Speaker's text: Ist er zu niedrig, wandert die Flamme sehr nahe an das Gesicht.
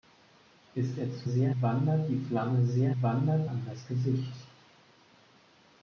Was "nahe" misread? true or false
true